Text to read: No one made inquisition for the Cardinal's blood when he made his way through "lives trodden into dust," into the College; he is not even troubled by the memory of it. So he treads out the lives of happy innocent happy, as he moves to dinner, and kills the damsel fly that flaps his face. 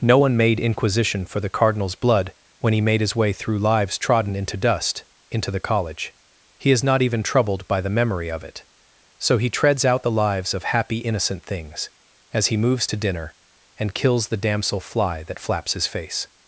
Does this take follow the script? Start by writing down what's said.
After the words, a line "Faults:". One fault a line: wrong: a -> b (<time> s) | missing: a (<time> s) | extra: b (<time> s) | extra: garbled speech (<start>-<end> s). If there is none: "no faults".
No one made inquisition for the Cardinal's blood when he made his way through "lives trodden into dust," into the College; he is not even troubled by the memory of it. So he treads out the lives of happy innocent things, as he moves to dinner, and kills the damsel fly that flaps his face.
Faults:
wrong: happy -> things (11.5 s)